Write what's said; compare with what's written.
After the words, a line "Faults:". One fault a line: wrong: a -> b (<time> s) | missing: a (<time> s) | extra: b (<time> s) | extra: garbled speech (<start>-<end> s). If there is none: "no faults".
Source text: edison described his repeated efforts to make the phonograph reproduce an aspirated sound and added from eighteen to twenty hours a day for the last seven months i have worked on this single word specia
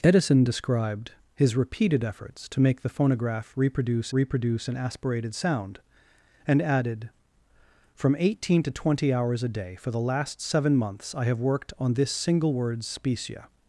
edison described his repeated efforts to make the phonograph reproduce reproduce an aspirated sound and added from eighteen to twenty hours a day for the last seven months i have worked on this single word specia
Faults:
extra: reproduce (4.1 s)